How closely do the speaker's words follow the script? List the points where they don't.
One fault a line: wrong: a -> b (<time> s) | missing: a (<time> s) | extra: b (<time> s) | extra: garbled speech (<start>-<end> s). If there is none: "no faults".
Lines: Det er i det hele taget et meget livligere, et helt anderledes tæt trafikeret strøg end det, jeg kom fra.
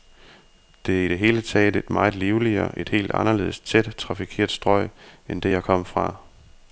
no faults